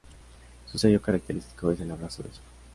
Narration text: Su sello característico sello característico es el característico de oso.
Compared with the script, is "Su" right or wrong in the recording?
right